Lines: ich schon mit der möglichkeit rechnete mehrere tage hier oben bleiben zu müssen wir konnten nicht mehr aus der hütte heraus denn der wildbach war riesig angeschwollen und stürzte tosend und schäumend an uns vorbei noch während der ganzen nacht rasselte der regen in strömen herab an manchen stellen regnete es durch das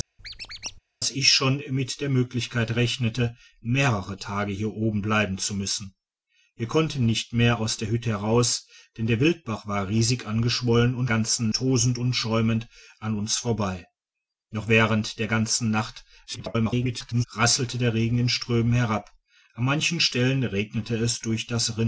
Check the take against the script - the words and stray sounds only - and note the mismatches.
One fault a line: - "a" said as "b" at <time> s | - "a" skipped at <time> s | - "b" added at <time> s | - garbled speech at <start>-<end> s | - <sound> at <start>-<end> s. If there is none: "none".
- squeak at 0.2-0.8 s
- "stürzte" said as "ganzen" at 11.1 s
- garbled speech at 16.3-17.3 s